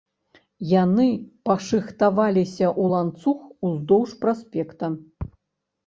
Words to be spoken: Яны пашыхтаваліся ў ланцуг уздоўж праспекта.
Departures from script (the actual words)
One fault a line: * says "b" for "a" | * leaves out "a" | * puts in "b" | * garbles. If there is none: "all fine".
all fine